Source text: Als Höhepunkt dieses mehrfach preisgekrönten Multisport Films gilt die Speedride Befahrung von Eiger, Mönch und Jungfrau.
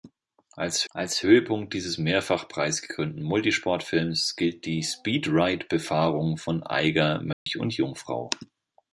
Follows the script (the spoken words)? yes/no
no